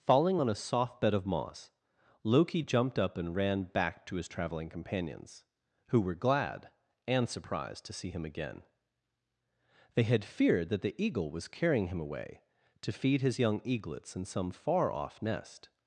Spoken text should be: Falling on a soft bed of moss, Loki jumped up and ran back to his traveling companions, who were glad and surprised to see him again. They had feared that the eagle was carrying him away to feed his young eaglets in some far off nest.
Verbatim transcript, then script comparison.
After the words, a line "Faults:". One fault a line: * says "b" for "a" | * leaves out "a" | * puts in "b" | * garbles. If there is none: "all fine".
Falling on a soft bed of moss, Loki jumped up and ran back to his traveling companions, who were glad and surprised to see him again. They had feared that the eagle was carrying him away to feed his young eaglets in some far off nest.
Faults:
all fine